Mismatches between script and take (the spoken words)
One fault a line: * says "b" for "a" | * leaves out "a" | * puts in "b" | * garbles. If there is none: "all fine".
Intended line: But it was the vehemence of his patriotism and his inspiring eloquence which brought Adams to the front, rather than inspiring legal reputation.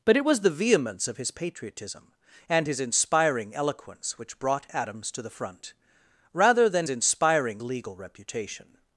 all fine